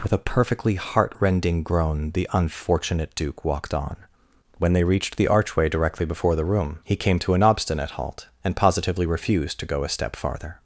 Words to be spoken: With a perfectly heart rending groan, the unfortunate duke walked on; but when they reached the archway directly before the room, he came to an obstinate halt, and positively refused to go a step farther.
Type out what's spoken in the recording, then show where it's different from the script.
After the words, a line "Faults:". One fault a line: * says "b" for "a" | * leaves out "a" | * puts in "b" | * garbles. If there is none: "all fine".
With a perfectly heart rending groan, the unfortunate duke walked on; when they reached the archway directly before the room, he came to an obstinate halt, and positively refused to go a step farther.
Faults:
* leaves out "but"